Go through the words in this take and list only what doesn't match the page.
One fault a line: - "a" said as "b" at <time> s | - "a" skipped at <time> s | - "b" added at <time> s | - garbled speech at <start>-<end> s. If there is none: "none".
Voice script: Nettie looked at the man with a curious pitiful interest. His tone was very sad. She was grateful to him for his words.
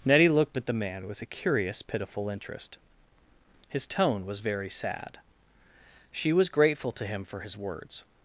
none